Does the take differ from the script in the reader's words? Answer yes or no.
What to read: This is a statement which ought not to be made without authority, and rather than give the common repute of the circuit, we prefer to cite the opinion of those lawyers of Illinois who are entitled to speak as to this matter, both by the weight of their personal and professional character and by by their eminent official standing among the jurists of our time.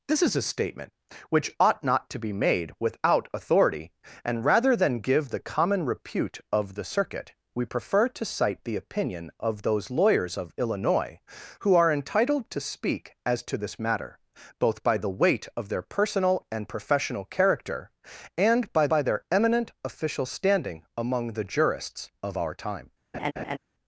no